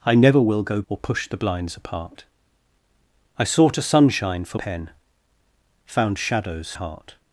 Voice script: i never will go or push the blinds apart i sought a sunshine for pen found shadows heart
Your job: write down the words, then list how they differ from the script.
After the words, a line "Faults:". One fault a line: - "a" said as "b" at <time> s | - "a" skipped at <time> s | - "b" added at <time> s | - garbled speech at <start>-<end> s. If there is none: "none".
i never will go or push the blinds apart i sought a sunshine for pen found shadows heart
Faults:
none